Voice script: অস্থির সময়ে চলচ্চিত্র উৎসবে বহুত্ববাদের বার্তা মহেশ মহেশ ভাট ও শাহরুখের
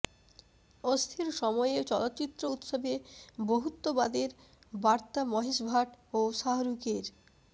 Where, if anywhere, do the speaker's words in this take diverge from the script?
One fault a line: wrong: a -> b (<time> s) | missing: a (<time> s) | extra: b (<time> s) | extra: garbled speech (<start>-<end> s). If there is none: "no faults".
missing: মহেশ (5.6 s)